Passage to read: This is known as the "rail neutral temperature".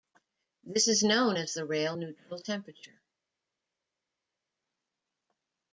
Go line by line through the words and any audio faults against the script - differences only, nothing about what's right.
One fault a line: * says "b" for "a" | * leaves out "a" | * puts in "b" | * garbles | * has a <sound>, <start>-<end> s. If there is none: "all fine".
all fine